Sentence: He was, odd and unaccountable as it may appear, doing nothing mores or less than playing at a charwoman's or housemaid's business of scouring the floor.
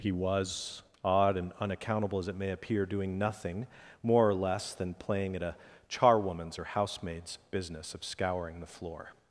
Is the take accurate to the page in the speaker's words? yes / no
no